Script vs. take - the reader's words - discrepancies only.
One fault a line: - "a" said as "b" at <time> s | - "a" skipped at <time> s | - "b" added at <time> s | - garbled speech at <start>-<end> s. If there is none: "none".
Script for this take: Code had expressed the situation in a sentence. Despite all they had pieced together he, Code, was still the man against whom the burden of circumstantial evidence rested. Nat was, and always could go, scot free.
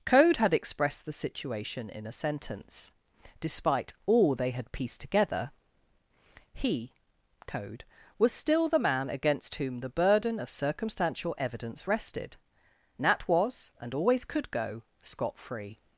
none